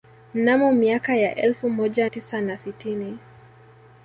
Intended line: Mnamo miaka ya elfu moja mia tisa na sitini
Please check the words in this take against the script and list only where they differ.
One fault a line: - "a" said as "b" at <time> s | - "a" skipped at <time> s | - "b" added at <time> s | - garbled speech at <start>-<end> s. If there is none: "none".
- "mia" skipped at 2.1 s